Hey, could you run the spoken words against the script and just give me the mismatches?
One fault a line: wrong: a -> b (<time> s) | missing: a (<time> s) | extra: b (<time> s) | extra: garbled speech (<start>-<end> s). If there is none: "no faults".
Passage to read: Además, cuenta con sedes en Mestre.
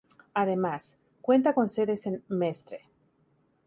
no faults